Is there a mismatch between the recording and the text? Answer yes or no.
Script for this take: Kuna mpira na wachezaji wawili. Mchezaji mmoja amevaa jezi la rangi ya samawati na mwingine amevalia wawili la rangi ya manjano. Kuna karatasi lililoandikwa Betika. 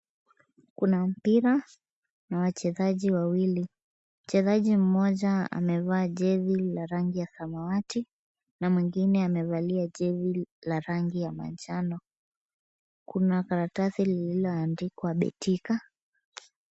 yes